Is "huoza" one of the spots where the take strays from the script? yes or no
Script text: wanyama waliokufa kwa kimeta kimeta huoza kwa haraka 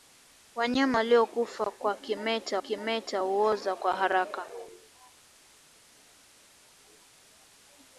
no